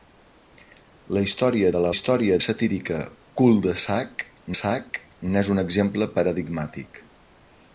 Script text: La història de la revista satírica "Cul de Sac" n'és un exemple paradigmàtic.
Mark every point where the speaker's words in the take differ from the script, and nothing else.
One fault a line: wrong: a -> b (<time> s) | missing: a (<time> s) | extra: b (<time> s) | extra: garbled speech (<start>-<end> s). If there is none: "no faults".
wrong: revista -> història (1.9 s)
extra: Sac (4.6 s)